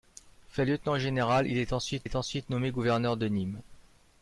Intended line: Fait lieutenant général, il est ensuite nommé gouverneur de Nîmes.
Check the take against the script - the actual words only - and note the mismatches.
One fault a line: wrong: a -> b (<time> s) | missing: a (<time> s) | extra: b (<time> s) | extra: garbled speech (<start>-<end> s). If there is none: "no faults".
extra: est ensuite (2.0 s)